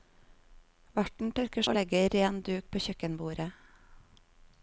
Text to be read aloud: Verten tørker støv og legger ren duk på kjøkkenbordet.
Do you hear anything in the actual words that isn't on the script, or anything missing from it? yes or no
yes